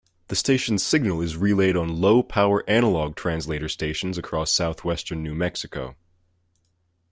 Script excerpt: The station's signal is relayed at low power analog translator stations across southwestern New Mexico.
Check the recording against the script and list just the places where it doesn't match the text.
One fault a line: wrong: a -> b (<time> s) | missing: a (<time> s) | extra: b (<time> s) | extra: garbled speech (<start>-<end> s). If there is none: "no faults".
wrong: at -> on (1.8 s)